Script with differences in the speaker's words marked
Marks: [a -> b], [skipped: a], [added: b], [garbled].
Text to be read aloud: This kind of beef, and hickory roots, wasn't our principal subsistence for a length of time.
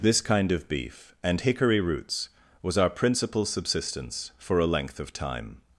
This kind of beef, and hickory roots, [wasn't -> was] our principal subsistence for a length of time.